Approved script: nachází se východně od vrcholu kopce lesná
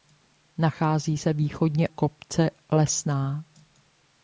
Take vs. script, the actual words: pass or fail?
fail